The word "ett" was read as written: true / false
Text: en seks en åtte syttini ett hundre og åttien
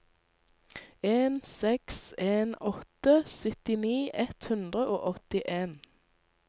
true